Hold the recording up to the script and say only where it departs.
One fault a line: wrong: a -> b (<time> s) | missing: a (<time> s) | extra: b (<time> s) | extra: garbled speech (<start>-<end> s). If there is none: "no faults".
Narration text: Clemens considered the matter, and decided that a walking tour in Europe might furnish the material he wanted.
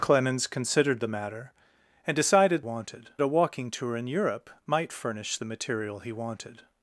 wrong: that -> wanted (2.6 s)